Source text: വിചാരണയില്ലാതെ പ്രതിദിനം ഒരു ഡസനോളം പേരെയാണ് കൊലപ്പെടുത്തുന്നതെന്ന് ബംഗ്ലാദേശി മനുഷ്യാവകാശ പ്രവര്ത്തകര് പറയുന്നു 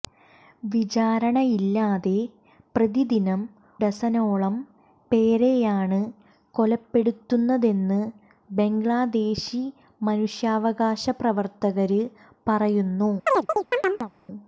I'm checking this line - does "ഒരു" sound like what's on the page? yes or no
no